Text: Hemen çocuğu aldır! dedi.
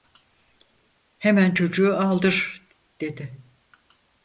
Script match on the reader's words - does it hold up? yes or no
yes